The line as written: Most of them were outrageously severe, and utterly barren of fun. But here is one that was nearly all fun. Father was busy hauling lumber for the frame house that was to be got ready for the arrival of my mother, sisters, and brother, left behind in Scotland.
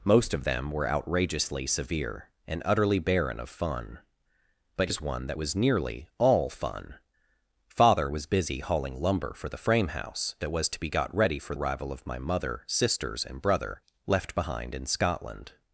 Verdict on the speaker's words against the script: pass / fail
fail